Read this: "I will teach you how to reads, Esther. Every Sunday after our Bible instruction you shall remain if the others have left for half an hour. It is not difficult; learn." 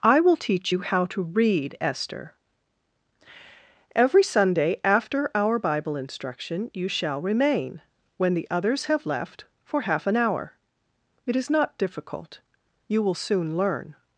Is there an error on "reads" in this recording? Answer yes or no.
yes